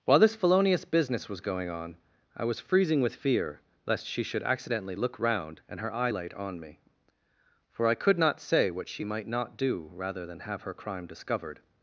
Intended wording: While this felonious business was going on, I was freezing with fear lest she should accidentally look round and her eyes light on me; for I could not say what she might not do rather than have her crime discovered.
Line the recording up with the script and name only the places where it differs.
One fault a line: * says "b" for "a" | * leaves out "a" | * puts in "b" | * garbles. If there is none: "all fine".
* says "eye" for "eyes"